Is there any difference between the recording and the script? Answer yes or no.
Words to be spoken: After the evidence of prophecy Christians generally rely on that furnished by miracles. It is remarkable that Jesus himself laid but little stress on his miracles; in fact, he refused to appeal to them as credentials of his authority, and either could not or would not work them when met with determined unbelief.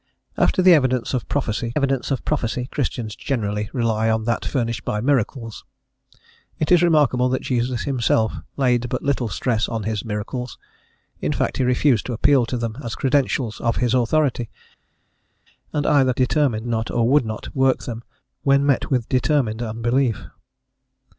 yes